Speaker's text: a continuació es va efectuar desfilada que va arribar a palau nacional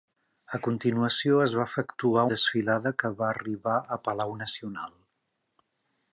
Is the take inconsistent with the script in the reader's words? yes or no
no